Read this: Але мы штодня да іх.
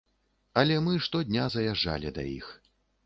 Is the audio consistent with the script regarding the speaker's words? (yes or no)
no